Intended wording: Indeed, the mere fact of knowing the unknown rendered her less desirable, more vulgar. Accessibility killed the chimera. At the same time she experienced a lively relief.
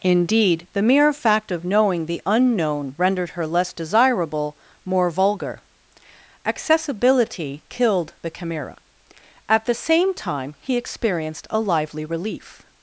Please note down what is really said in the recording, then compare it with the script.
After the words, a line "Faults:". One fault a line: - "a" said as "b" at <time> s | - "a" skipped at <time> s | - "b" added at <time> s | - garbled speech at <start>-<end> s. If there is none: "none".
Indeed, the mere fact of knowing the unknown rendered her less desirable, more vulgar. Accessibility killed the chimera. At the same time he experienced a lively relief.
Faults:
- "she" said as "he" at 10.6 s